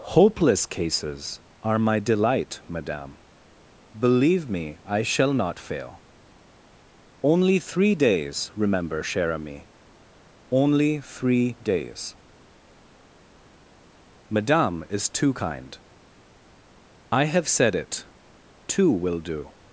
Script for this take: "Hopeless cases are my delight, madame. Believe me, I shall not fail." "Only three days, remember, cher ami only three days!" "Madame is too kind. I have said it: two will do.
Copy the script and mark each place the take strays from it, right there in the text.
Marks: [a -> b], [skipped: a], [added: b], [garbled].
"Hopeless cases are my delight, madame. Believe me, I shall not fail." "Only three days, remember, cher ami only three days!" "Madame is too kind. I have said it: two will do.